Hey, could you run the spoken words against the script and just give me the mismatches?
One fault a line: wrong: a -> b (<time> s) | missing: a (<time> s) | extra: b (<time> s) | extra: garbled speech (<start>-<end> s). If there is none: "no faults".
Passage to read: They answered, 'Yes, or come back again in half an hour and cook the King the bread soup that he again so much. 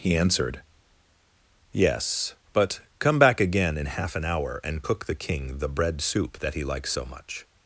wrong: They -> He (0.0 s)
wrong: or -> but (2.5 s)
wrong: again -> likes (6.6 s)